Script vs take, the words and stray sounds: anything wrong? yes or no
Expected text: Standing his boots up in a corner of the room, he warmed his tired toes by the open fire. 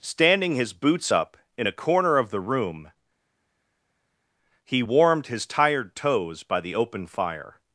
no